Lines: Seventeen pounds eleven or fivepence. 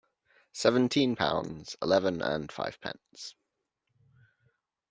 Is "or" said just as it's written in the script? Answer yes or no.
no